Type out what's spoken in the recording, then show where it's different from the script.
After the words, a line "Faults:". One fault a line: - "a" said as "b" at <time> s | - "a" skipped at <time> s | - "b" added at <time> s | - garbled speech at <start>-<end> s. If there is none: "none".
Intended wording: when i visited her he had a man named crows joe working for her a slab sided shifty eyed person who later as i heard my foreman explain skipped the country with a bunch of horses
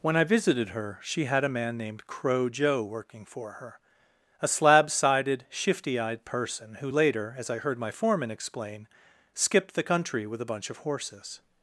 when i visited her she had a man named crow joe working for her a slab sided shifty eyed person who later as i heard my foreman explain skipped the country with a bunch of horses
Faults:
- "he" said as "she" at 1.0 s
- "crows" said as "crow" at 2.1 s